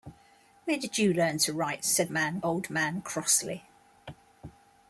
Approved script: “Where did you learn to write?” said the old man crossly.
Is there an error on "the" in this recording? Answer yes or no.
yes